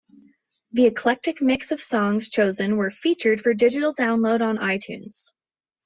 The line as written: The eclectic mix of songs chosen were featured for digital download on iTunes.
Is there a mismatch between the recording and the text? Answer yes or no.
no